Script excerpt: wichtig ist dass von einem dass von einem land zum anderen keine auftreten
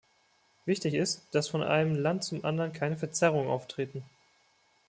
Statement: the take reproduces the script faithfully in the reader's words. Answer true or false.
false